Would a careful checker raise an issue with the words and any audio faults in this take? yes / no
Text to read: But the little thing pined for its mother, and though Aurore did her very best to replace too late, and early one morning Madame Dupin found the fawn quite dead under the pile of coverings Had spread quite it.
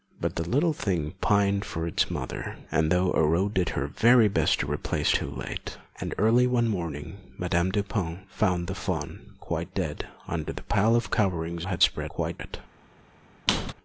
yes